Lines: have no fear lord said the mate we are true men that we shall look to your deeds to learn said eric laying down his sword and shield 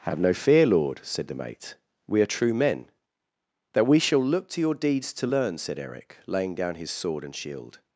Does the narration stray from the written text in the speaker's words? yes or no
no